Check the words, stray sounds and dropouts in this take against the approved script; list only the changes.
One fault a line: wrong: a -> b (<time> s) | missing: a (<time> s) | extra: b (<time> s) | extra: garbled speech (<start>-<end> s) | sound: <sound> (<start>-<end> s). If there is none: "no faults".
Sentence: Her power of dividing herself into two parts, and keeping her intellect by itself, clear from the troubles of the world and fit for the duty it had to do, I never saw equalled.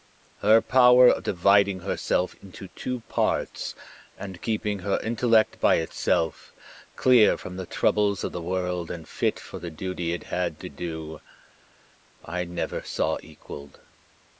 no faults